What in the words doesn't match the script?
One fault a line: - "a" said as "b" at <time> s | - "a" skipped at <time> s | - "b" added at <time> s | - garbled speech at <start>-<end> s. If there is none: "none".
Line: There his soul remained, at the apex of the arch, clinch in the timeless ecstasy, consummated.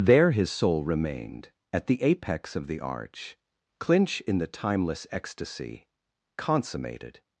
none